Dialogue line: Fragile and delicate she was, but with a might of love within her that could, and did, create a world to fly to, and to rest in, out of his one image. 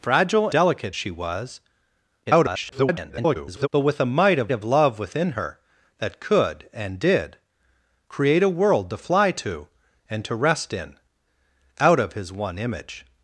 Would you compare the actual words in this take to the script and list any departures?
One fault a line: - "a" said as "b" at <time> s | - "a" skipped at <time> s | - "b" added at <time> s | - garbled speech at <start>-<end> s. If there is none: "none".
- "and" skipped at 0.5 s
- garbled speech at 2.3-3.7 s
- "of" added at 4.5 s